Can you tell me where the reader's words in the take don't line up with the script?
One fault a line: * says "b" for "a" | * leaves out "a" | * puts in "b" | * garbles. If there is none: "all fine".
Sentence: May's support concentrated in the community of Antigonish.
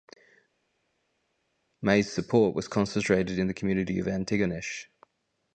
* puts in "was"